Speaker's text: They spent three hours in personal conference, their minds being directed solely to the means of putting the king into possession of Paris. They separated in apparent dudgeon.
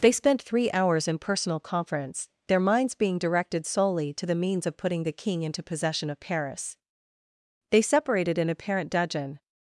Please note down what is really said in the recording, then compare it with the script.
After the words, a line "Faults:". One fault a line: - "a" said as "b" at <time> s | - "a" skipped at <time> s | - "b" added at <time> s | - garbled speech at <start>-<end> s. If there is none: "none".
They spent three hours in personal conference, their minds being directed solely to the means of putting the king into possession of Paris. They separated in apparent dudgeon.
Faults:
none